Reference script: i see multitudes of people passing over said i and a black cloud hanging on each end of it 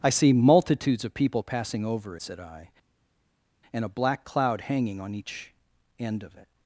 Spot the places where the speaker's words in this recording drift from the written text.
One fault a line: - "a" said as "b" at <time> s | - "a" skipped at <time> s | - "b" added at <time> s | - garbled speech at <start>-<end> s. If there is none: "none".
none